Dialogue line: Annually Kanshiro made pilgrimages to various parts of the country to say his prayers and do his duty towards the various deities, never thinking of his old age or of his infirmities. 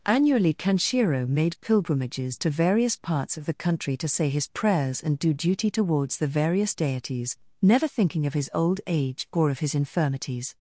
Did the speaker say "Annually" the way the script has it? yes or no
yes